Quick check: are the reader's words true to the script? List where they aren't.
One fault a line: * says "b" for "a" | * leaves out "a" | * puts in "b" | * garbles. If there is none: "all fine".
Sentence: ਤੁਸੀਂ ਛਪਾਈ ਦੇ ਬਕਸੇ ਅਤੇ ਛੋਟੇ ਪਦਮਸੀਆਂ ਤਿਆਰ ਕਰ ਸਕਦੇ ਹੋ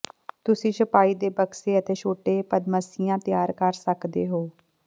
all fine